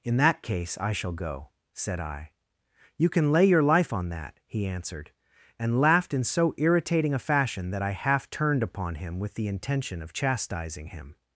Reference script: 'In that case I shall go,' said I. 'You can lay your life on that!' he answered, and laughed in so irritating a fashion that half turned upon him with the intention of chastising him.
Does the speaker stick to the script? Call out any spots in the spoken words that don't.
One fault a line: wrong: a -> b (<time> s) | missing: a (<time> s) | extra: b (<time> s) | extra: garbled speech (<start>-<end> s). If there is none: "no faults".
extra: I (7.8 s)